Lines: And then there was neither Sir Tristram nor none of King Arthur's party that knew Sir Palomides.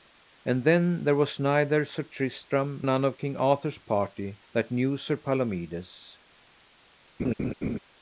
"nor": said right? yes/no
no